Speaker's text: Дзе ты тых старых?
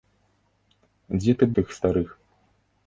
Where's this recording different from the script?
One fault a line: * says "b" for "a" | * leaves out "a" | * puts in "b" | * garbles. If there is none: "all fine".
all fine